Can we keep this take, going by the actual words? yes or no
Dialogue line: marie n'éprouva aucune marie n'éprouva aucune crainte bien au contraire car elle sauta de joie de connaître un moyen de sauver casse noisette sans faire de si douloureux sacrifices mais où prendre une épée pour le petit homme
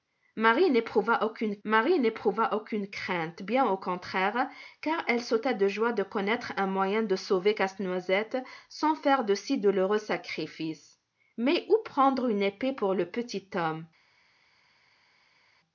yes